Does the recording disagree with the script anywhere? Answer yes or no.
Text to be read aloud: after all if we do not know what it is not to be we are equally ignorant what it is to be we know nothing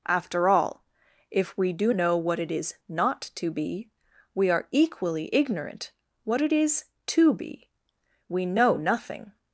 yes